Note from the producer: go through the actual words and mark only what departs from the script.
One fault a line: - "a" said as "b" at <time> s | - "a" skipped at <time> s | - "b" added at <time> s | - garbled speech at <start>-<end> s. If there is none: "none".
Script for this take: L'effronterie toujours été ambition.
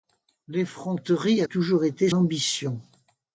none